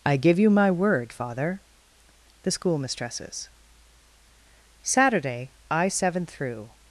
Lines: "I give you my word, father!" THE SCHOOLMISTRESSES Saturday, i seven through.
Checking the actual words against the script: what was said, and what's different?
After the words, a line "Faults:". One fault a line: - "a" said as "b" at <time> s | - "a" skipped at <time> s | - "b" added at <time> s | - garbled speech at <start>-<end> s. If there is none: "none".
"I give you my word, father!" THE SCHOOLMISTRESSES Saturday, i seven through.
Faults:
none